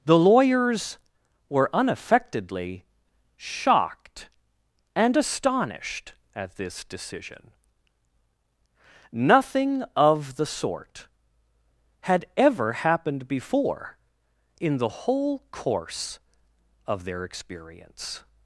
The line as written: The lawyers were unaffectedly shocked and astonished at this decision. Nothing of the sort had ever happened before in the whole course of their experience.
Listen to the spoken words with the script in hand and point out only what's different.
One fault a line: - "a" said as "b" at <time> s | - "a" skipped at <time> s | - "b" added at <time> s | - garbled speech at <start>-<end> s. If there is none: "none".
none